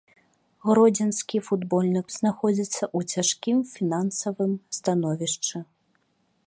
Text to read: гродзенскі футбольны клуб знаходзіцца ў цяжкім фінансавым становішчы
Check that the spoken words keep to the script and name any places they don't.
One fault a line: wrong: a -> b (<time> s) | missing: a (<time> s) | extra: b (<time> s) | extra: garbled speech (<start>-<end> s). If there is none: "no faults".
missing: клуб (2.0 s)